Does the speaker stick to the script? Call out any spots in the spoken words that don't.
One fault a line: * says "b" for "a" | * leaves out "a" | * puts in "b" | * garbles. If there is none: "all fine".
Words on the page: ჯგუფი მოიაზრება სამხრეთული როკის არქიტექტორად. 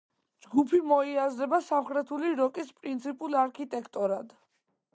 * puts in "პრინციპულ"